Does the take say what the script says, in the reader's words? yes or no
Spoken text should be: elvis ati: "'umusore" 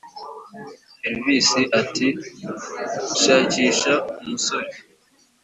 no